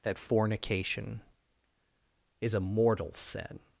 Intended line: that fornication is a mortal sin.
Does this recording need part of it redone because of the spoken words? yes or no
no